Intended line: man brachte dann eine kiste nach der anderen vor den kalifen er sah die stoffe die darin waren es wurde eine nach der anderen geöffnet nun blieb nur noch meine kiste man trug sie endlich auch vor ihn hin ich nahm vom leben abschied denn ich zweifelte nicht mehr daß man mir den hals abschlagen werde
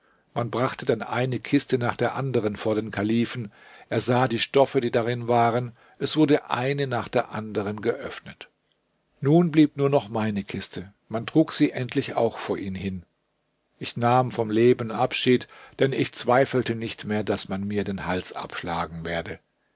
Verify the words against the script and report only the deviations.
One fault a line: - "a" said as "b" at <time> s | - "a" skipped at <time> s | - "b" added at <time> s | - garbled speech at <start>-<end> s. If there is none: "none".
none